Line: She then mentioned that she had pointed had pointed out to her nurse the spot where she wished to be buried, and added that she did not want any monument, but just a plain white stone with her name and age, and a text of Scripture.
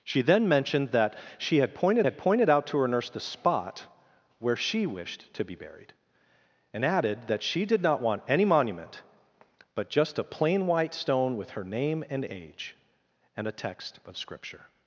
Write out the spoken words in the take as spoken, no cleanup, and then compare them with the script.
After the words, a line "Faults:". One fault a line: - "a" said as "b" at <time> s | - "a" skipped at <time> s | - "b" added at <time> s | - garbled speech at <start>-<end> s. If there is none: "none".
She then mentioned that she had pointed had pointed out to her nurse the spot where she wished to be buried, and added that she did not want any monument, but just a plain white stone with her name and age, and a text of Scripture.
Faults:
none